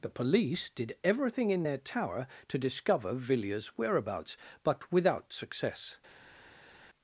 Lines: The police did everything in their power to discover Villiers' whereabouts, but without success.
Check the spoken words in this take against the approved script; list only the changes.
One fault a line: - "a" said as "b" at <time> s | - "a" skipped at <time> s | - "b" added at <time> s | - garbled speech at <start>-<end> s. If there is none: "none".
- "power" said as "tower" at 1.8 s